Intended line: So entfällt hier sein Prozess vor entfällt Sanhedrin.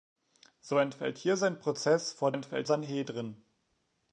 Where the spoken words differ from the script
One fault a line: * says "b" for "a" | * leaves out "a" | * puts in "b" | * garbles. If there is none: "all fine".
all fine